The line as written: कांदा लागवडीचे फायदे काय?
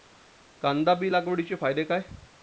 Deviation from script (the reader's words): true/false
true